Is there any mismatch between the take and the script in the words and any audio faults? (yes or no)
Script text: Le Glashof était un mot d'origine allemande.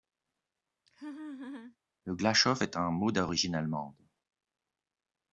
yes